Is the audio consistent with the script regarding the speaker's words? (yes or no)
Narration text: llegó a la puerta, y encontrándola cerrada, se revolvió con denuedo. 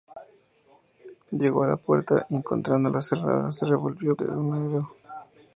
no